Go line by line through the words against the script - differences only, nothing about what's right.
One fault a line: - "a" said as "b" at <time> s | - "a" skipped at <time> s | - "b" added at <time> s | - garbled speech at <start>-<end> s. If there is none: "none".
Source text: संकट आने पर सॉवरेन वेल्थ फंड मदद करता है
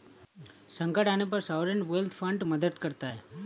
none